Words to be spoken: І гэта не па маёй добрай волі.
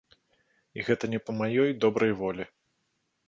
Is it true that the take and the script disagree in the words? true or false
false